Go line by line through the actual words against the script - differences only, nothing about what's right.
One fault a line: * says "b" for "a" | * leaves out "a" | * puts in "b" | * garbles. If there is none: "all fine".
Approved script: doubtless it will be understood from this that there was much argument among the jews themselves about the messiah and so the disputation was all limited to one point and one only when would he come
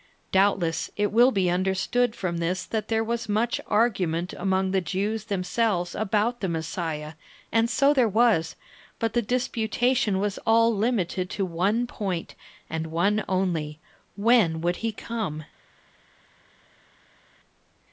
* puts in "there was but"